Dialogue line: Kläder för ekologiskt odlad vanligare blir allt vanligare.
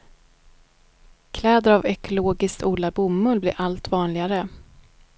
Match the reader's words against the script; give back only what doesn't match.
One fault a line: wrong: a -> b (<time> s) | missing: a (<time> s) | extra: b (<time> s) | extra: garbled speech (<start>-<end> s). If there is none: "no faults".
wrong: för -> av (1.7 s)
wrong: vanligare -> bomull (2.9 s)